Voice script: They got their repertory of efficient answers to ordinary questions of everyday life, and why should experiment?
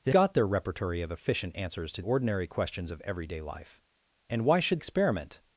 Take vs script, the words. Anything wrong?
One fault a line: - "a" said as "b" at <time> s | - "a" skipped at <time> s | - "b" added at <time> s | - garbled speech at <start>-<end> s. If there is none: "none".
none